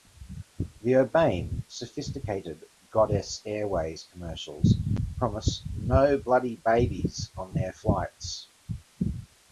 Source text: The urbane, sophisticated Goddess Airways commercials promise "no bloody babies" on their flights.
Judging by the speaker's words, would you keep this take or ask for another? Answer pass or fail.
pass